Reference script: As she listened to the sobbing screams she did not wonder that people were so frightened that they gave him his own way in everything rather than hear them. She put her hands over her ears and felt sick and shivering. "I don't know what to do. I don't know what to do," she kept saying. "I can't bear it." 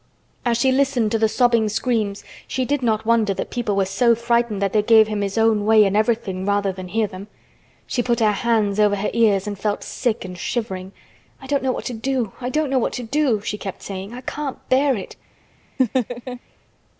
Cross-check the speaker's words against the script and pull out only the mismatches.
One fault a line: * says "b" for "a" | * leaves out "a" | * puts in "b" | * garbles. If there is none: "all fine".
all fine